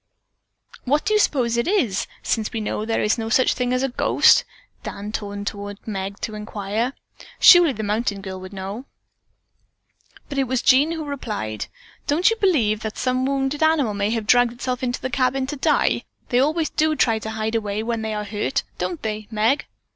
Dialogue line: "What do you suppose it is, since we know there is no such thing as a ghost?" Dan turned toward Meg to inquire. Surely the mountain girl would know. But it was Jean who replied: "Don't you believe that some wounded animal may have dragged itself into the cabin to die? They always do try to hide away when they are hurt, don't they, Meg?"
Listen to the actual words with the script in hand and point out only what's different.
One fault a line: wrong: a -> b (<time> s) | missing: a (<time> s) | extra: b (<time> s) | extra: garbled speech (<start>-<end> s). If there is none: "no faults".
no faults